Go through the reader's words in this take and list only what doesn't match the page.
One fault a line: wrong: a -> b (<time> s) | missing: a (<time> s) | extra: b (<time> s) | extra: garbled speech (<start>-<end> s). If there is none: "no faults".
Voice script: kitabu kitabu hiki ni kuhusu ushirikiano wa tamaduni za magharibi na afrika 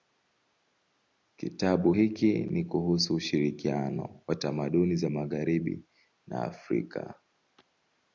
missing: kitabu (1.9 s)